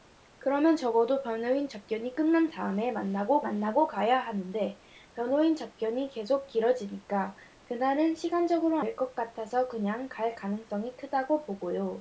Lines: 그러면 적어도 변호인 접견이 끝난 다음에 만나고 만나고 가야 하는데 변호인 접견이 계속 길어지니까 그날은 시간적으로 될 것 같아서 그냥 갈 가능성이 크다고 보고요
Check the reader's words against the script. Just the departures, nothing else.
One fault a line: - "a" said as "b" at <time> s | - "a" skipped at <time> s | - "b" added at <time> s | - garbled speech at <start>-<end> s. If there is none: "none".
none